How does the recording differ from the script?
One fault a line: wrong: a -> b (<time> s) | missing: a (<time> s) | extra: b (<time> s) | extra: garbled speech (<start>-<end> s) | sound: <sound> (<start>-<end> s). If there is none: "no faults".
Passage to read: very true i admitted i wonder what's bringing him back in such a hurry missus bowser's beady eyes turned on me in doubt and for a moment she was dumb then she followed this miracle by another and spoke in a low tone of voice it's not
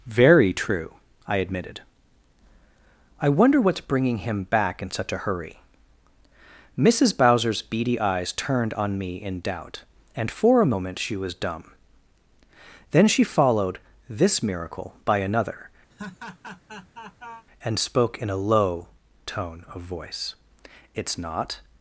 sound: laugh (15.9-17.5 s)